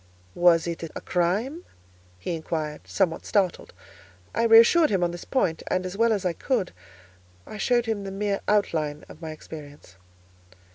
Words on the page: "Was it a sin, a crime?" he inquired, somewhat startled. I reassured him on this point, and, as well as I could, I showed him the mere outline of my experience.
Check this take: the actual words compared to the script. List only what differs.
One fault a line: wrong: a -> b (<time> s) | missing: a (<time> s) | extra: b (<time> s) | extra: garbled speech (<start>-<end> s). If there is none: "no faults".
missing: sin (0.9 s)